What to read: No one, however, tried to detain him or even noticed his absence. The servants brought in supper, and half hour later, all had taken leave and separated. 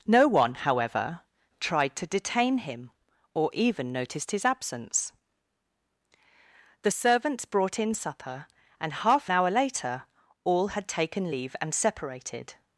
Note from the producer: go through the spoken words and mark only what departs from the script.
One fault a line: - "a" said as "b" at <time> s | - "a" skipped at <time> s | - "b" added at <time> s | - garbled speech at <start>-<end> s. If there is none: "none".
none